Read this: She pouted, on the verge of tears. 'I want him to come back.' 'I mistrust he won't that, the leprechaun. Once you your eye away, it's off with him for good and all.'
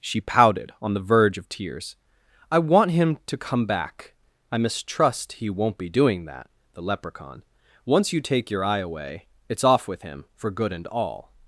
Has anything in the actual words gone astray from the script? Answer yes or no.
yes